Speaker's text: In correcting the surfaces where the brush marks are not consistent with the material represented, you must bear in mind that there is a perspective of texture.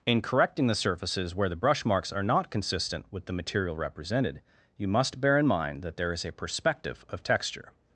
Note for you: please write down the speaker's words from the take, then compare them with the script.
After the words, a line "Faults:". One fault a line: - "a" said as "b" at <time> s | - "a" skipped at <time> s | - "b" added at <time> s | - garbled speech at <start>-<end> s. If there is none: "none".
In correcting the surfaces where the brush marks are not consistent with the material represented, you must bear in mind that there is a perspective of texture.
Faults:
none